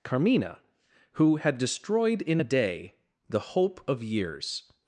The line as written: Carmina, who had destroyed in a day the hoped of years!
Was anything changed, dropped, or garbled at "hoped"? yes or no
yes